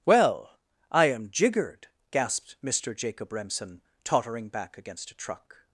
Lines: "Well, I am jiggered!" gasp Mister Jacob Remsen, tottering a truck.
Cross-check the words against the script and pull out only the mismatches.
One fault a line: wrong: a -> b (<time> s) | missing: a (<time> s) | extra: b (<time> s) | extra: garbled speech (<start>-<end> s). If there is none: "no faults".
wrong: gasp -> gasped (2.1 s)
extra: back against (4.5 s)